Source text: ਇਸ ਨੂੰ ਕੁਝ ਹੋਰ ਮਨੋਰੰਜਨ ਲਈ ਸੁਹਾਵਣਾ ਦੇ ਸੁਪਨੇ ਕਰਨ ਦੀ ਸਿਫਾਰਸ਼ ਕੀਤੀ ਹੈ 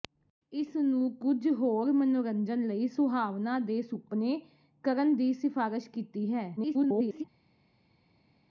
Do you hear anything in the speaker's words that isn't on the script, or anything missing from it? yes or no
yes